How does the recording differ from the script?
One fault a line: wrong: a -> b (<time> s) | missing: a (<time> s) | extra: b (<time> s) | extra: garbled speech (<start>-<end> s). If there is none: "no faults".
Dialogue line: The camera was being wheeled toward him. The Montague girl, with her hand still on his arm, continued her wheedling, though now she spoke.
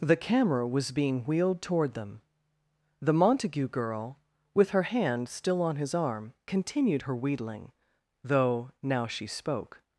wrong: him -> them (1.9 s)